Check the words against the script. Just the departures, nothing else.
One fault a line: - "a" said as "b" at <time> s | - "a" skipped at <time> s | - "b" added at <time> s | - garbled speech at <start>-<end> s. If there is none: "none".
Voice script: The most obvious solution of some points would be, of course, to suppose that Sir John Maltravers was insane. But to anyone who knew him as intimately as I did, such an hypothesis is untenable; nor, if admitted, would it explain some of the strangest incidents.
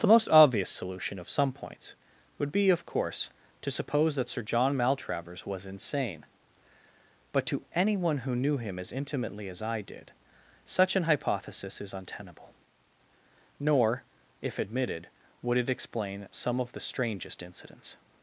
none